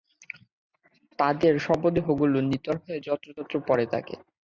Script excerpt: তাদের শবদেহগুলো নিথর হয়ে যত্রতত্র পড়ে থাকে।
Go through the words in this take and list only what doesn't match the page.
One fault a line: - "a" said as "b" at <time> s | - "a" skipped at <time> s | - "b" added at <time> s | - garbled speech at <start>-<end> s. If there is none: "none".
none